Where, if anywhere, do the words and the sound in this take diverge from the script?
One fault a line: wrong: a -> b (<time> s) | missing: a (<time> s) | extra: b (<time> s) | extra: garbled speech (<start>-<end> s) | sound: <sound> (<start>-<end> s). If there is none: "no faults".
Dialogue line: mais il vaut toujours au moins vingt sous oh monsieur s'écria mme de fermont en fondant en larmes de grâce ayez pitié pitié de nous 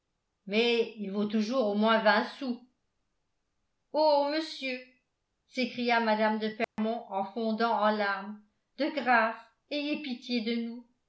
sound: dropout (6.6-6.8 s)
missing: pitié (10.4 s)